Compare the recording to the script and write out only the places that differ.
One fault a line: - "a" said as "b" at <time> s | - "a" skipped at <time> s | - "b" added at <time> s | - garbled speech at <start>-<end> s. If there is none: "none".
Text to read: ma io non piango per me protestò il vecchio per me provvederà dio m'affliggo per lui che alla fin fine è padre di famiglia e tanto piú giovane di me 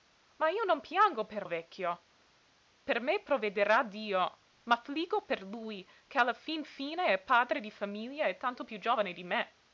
- "me protestò" skipped at 1.4 s